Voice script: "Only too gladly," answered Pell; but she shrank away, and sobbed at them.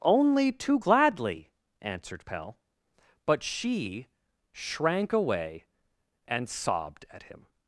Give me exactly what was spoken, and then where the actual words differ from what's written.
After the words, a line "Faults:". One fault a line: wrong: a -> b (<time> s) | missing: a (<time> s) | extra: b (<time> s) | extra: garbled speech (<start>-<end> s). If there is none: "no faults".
"Only too gladly," answered Pell; but she shrank away, and sobbed at him.
Faults:
wrong: them -> him (7.2 s)